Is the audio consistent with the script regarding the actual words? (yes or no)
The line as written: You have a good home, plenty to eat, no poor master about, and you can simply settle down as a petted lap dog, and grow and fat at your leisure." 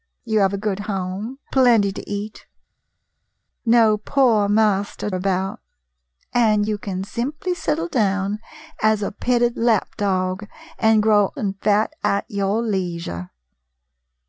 yes